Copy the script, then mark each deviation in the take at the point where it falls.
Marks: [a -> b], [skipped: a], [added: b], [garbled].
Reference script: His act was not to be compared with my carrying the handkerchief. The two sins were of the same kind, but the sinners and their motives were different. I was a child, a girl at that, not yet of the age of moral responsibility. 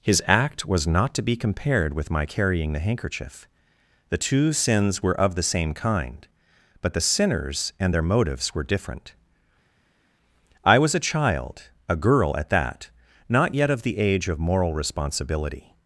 His act was not to be compared with my carrying the handkerchief. The two sins were of the same kind, but the sinners and their motives were different. I was a child, a girl at that, not yet of the age of moral responsibility.